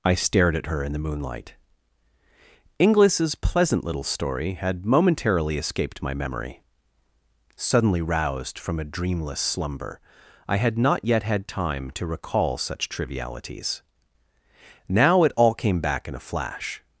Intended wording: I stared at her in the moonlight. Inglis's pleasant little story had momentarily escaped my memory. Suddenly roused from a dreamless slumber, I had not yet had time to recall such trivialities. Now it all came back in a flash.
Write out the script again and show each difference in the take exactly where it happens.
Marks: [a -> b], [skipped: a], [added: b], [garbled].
I stared at her in the moonlight. Inglis's pleasant little story had momentarily escaped my memory. Suddenly roused from a dreamless slumber, I had not yet had time to recall such trivialities. Now it all came back in a flash.